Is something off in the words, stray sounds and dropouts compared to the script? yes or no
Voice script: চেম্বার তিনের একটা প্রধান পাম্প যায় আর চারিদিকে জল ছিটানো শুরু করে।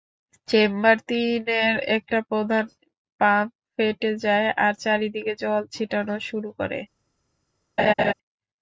yes